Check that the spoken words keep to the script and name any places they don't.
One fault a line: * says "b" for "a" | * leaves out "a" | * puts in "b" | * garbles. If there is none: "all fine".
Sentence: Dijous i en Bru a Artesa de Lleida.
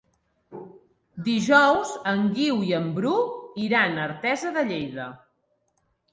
* puts in "en Guiu"
* puts in "iran"